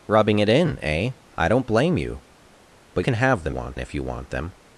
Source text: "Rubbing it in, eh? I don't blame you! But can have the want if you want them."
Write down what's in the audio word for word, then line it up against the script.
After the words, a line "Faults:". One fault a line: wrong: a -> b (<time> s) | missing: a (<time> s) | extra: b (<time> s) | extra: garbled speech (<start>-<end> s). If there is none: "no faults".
"Rubbing it in, eh? I don't blame you! But can have the want if you want them."
Faults:
no faults